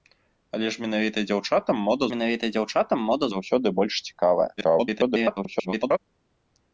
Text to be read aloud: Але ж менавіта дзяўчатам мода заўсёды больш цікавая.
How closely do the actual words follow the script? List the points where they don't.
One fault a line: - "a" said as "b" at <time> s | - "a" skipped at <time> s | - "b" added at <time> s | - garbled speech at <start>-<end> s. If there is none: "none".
- "менавіта дзяўчатам мода" added at 2.1 s
- garbled speech at 4.6-6.0 s